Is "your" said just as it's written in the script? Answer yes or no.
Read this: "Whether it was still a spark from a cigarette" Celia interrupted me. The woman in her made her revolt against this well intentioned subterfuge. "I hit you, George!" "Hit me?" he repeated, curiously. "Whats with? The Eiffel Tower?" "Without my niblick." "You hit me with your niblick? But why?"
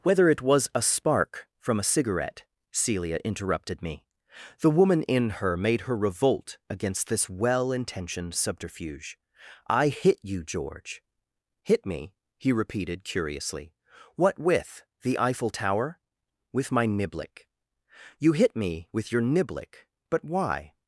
yes